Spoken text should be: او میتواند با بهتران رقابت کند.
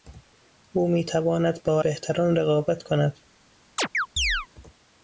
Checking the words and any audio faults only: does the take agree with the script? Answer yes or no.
no